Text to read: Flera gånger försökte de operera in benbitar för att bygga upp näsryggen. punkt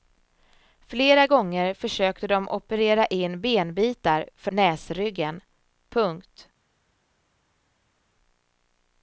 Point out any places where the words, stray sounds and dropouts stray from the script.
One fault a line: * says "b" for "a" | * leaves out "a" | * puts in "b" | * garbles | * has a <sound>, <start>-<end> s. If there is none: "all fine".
* leaves out "att bygga upp"